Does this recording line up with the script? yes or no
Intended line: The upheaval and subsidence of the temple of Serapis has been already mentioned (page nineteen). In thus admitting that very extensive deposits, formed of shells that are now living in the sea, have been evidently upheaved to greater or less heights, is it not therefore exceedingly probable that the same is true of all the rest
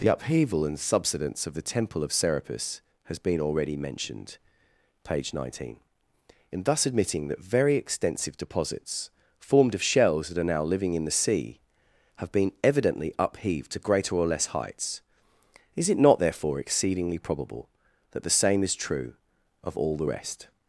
yes